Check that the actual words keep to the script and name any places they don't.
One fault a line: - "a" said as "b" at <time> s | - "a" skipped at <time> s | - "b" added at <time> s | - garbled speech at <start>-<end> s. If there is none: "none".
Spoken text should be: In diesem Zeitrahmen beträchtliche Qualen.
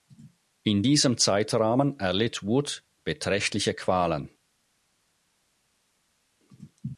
- "erlitt Wood" added at 2.0 s